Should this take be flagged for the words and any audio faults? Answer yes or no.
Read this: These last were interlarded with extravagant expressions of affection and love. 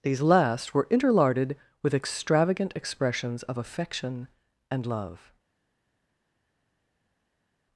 no